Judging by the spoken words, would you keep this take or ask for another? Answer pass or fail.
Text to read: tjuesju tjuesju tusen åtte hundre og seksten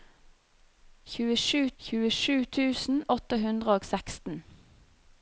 pass